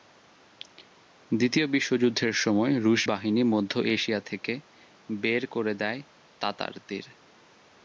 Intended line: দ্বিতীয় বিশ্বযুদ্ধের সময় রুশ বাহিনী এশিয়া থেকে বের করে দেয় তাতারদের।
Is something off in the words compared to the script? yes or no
yes